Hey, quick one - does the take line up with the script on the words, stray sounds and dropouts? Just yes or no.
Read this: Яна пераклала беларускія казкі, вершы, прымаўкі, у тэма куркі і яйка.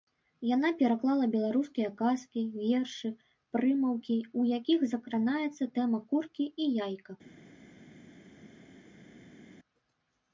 no